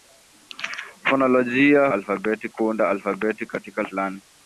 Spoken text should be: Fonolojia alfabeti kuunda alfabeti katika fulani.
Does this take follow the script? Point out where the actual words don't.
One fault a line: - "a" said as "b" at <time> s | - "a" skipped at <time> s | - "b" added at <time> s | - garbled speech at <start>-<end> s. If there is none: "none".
none